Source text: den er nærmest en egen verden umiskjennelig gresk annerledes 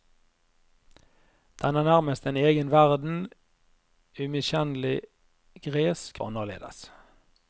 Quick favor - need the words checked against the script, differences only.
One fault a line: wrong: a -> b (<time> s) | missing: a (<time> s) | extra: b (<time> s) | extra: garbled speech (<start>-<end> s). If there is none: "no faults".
no faults